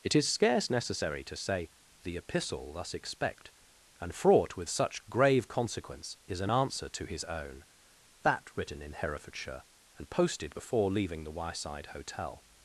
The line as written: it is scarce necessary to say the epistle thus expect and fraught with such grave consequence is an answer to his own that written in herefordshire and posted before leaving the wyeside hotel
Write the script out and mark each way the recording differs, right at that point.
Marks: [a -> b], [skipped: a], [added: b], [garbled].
it is scarce necessary to say the epistle thus expect and fraught with such grave consequence is an answer to his own that written in herefordshire and posted before leaving the wyeside hotel